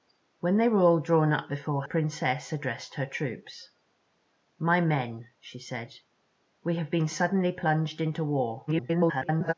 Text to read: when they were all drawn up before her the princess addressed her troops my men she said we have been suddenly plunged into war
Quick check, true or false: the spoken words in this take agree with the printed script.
false